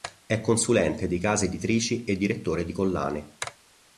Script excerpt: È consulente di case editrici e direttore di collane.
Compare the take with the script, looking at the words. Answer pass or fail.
pass